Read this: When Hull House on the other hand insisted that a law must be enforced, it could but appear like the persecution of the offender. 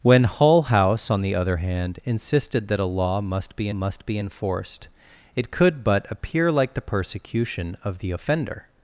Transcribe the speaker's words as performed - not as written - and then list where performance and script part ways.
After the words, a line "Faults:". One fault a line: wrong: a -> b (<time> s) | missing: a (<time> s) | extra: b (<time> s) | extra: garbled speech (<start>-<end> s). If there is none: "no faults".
When Hull House on the other hand insisted that a law must be must be enforced, it could but appear like the persecution of the offender.
Faults:
extra: must be (3.7 s)